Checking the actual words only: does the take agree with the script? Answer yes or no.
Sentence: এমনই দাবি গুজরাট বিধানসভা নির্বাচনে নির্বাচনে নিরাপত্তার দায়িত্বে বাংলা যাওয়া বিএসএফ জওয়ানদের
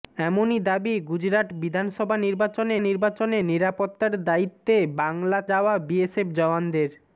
yes